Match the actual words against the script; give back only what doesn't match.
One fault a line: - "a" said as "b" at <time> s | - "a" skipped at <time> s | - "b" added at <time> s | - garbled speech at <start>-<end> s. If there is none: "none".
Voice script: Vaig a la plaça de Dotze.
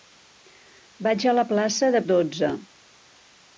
none